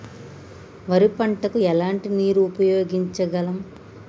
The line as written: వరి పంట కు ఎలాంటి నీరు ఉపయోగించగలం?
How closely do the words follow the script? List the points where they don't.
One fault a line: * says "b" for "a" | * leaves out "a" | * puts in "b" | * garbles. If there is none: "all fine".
all fine